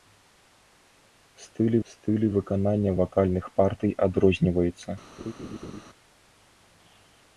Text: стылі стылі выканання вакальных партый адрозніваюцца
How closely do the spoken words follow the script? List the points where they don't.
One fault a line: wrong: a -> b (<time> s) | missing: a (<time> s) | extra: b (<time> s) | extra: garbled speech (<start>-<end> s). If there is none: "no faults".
no faults